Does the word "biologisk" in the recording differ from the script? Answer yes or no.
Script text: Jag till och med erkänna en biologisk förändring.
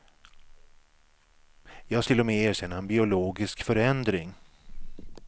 no